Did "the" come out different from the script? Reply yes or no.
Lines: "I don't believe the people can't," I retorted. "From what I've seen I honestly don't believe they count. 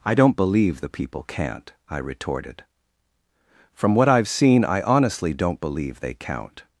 no